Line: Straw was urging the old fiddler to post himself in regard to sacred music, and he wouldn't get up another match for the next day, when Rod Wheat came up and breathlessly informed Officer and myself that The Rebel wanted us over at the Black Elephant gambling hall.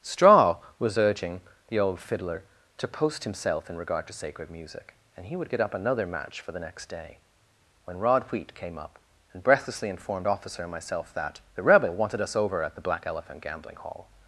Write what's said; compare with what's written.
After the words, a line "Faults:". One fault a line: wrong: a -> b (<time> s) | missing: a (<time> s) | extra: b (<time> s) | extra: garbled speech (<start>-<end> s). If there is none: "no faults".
Straw was urging the old fiddler to post himself in regard to sacred music, and he would get up another match for the next day, when Rod Wheat came up and breathlessly informed Officer and myself that The Rebel wanted us over at the Black Elephant gambling hall.
Faults:
wrong: wouldn't -> would (5.3 s)